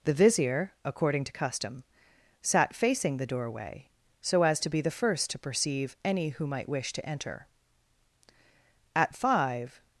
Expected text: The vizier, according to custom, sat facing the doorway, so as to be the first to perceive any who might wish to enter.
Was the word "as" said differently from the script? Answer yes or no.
no